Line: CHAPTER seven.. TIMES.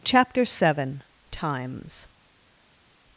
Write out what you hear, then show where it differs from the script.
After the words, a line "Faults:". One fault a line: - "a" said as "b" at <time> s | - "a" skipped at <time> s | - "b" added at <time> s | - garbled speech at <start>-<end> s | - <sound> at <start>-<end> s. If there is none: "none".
CHAPTER seven.. TIMES.
Faults:
none